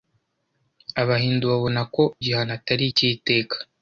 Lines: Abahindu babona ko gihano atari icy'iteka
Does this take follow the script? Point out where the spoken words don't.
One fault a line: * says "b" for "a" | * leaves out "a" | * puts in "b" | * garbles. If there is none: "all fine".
all fine